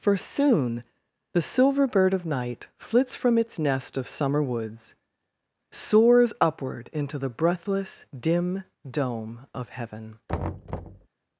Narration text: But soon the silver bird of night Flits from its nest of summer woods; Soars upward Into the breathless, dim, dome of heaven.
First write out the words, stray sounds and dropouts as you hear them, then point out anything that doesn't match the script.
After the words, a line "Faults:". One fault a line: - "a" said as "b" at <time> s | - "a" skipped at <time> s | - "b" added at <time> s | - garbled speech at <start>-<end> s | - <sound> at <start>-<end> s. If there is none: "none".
For soon the silver bird of night Flits from its nest of summer woods; Soars upward Into the breathless, dim, dome of heaven.
Faults:
- "But" said as "For" at 0.0 s
- thud at 10.3-11.1 s